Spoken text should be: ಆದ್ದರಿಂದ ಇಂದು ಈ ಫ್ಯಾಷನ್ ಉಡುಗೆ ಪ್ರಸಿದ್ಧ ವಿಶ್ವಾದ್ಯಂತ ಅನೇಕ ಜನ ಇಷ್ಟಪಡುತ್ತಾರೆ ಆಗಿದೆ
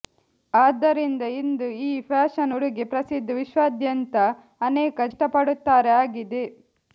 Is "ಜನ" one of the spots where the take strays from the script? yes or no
yes